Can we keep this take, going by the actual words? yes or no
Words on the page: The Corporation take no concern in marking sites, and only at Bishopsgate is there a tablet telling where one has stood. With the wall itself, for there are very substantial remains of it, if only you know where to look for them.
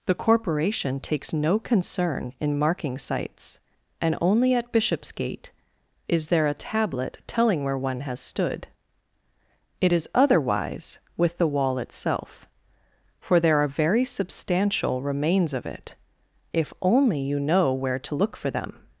no